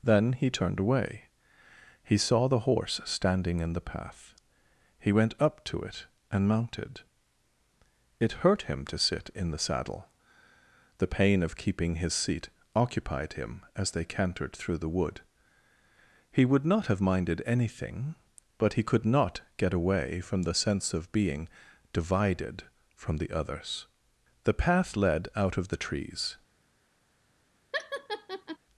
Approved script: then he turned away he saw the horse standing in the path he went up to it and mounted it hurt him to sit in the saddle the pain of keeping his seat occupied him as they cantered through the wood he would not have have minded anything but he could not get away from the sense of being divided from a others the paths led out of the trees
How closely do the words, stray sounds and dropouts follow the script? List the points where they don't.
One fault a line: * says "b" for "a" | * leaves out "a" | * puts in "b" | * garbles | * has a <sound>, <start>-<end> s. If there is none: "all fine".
* leaves out "have"
* says "the" for "a"
* says "path" for "paths"
* has a laugh, 27.7-28.6 s